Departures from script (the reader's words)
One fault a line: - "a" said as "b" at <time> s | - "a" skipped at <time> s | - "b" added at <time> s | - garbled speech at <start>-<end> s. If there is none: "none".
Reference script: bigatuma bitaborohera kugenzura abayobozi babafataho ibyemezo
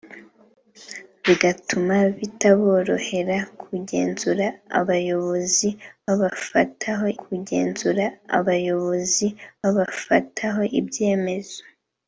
- "kugenzura abayobozi babafataho" added at 7.2 s